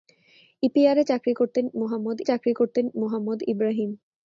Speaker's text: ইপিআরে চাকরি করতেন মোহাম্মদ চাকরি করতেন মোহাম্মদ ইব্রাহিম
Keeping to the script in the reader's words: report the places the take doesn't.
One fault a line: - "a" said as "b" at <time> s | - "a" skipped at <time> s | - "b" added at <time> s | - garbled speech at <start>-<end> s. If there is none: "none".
none